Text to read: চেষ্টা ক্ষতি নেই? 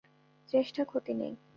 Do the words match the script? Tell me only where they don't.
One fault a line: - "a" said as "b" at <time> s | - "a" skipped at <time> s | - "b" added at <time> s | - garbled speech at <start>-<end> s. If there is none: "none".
none